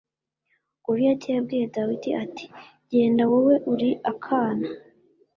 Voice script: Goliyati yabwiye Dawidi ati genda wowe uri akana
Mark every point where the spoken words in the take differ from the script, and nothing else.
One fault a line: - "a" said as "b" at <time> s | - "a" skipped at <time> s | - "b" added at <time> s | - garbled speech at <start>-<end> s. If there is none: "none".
none